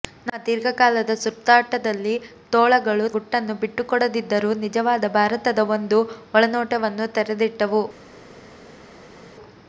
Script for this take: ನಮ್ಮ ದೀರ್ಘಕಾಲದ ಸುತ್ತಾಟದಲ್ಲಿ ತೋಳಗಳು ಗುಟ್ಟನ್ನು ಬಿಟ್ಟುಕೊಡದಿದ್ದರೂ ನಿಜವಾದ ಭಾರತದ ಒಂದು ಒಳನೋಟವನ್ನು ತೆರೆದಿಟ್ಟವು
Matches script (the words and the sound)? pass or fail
pass